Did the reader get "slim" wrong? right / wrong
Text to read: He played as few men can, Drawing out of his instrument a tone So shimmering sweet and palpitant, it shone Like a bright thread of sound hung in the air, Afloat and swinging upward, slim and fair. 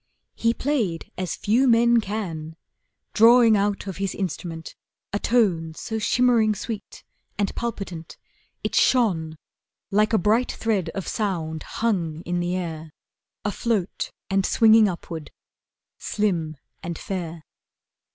right